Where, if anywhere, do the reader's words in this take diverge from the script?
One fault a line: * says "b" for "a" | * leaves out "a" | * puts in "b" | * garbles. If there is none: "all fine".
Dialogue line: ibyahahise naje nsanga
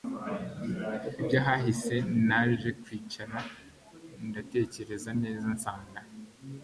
* puts in "kwicara ndatekereza neza"